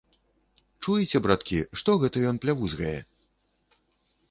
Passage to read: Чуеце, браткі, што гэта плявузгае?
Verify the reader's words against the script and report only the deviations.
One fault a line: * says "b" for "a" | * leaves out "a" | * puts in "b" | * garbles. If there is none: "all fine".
* puts in "ён"